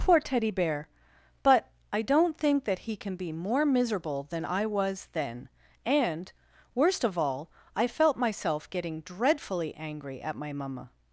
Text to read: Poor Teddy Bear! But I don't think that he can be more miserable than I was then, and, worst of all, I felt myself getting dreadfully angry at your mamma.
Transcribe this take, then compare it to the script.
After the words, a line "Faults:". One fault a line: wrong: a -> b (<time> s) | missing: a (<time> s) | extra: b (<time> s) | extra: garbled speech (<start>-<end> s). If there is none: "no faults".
Poor Teddy Bear! But I don't think that he can be more miserable than I was then, and, worst of all, I felt myself getting dreadfully angry at my mamma.
Faults:
wrong: your -> my (10.4 s)